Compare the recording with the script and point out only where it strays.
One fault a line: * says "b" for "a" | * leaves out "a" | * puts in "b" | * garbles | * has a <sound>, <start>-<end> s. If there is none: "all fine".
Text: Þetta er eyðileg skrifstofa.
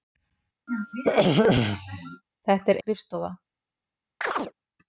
* has a throat clearing, 0.7-2.2 s
* leaves out "eyðileg"
* has a chirp, 4.2-4.5 s